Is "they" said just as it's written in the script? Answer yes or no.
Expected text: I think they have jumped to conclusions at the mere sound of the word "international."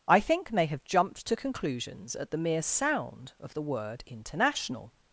no